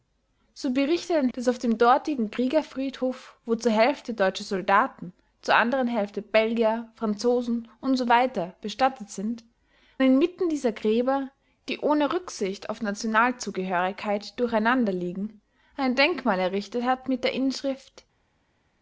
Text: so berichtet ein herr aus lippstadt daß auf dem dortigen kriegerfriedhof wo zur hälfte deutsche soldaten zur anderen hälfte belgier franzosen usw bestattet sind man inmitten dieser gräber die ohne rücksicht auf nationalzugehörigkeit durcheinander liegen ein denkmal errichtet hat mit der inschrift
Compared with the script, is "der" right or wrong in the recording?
right